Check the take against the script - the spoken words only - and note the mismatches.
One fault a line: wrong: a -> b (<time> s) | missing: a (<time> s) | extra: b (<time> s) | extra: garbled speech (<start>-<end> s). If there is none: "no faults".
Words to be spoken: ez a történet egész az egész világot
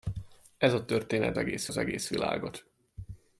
no faults